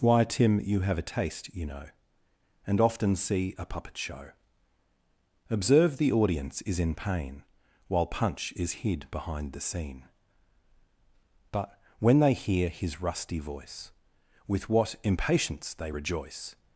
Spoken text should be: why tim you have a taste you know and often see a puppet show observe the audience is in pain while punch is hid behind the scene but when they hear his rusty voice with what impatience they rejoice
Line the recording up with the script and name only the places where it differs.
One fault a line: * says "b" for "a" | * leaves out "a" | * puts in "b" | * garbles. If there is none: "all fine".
all fine